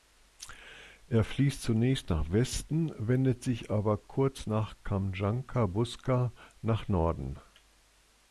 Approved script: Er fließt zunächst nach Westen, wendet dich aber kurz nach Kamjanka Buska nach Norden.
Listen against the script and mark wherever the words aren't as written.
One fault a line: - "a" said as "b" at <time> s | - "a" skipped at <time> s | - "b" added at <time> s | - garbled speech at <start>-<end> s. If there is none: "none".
- "dich" said as "sich" at 3.4 s